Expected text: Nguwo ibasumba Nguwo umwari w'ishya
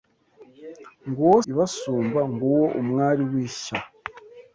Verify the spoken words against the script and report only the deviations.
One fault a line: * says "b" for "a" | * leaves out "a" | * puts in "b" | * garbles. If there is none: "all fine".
all fine